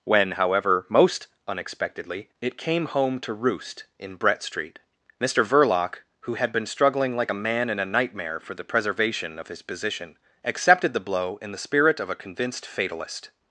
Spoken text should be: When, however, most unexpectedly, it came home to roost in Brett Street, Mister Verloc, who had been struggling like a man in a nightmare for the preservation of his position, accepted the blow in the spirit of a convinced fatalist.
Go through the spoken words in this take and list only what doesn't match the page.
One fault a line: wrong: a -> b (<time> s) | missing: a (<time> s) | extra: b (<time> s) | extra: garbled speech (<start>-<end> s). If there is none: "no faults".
no faults